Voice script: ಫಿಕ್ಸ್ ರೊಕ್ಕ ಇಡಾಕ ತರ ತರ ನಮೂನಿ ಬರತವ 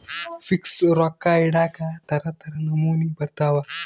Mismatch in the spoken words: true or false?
false